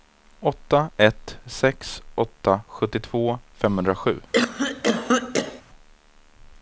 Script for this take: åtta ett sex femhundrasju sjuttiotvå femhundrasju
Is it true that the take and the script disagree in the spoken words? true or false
true